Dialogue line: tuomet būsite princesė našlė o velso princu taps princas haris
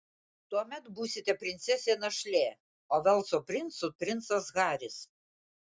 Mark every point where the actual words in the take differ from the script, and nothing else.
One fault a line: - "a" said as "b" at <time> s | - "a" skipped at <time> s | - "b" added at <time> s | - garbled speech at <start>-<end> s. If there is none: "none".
- "taps" skipped at 3.9 s